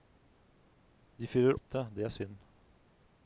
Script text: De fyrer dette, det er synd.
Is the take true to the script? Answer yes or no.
yes